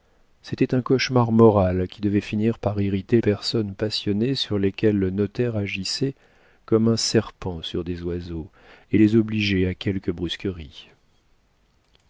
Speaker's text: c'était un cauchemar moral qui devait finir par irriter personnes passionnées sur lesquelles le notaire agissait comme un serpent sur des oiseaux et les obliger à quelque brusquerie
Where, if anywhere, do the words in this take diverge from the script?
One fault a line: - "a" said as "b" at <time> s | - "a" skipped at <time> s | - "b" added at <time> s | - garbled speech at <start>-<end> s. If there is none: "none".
none